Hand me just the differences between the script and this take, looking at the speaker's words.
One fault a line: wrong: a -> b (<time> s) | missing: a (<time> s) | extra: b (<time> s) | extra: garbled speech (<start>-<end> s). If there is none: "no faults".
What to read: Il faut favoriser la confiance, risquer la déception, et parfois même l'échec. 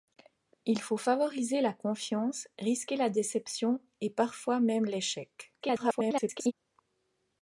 extra: garbled speech (5.6-6.5 s)